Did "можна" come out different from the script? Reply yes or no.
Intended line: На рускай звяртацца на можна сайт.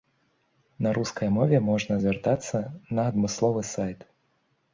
yes